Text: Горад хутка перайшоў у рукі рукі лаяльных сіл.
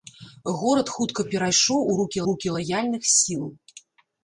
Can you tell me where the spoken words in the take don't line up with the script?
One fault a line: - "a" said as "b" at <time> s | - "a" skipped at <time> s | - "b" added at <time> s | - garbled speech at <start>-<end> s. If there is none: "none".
none